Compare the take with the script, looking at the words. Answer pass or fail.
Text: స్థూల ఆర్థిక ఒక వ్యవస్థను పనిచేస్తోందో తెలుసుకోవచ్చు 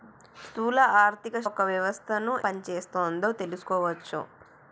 pass